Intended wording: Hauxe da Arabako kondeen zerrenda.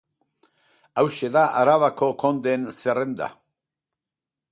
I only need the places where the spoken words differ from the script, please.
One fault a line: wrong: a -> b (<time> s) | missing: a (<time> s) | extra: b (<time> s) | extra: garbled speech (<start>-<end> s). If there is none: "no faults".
no faults